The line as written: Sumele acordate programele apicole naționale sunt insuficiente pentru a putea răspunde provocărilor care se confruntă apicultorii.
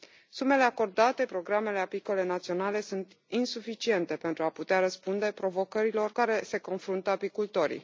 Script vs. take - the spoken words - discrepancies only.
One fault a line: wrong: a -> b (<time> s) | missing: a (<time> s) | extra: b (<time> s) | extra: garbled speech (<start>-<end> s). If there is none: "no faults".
no faults